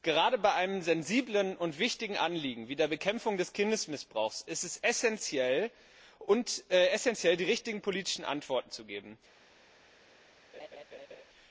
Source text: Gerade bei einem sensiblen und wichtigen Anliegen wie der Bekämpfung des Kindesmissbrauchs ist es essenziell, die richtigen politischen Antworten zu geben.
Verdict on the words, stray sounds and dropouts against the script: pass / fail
fail